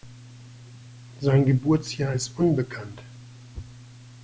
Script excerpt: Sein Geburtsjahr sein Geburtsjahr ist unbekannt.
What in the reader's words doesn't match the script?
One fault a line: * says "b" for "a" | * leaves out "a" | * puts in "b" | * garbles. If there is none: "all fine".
* leaves out "sein Geburtsjahr"